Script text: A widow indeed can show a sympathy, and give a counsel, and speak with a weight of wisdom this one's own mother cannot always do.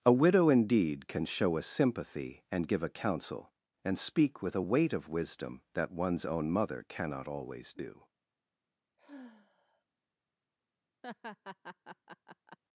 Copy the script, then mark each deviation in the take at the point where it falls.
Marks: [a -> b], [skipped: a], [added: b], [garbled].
A widow indeed can show a sympathy, and give a counsel, and speak with a weight of wisdom [this -> that] one's own mother cannot always do.